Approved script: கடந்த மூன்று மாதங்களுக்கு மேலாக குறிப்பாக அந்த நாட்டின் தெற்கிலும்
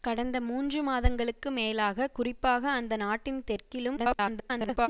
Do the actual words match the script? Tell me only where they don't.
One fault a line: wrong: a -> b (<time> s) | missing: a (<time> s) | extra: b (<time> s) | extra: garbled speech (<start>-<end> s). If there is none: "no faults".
extra: garbled speech (4.0-4.9 s)